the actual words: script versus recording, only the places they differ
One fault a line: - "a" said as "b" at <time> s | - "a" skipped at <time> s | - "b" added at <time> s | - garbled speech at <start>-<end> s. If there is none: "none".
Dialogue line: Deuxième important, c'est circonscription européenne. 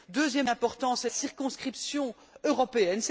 none